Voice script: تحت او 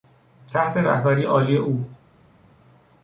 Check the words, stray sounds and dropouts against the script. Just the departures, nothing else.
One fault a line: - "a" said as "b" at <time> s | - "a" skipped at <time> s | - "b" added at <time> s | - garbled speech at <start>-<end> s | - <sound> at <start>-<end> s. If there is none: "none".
- "رهبری عالی" added at 0.8 s